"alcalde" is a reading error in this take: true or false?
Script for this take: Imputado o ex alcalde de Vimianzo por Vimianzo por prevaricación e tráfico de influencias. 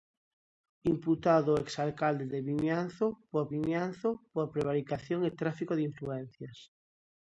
false